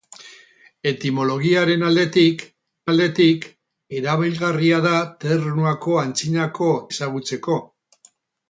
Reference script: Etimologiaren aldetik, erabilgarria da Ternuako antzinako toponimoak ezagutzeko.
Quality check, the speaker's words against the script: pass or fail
fail